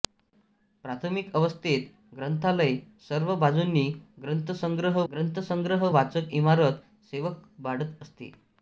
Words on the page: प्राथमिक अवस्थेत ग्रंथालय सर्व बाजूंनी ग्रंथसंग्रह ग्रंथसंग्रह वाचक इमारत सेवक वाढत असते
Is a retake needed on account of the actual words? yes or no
no